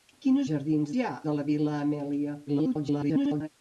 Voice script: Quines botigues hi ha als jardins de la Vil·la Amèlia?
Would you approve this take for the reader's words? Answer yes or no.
no